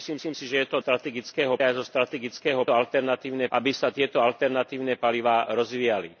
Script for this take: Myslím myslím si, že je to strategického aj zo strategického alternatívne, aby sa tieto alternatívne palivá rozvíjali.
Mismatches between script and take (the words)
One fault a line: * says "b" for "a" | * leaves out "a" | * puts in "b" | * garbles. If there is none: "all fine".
all fine